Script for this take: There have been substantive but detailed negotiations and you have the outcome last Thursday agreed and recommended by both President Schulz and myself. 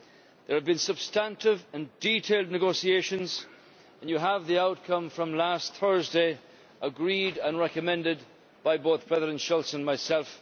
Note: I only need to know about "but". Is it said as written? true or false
false